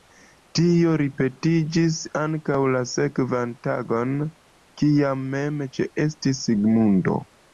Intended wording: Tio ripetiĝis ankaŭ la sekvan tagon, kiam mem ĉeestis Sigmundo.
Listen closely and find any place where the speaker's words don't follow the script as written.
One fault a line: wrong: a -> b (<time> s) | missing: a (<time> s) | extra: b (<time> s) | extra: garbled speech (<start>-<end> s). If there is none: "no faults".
no faults